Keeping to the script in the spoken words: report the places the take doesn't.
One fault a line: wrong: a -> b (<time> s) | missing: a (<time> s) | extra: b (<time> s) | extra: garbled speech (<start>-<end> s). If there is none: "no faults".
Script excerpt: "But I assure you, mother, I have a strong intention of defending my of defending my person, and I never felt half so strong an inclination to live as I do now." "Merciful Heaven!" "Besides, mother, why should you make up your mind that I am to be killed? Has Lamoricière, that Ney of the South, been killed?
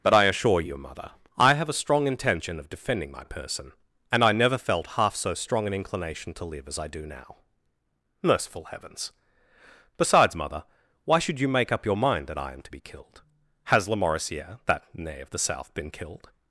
missing: of defending my (3.2 s)
wrong: Heaven -> Heavens (8.7 s)